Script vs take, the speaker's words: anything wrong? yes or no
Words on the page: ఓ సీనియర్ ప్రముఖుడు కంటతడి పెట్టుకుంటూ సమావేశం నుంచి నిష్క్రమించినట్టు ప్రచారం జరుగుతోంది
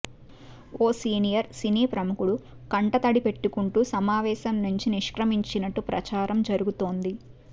yes